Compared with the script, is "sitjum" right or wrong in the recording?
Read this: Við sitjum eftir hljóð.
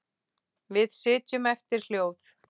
right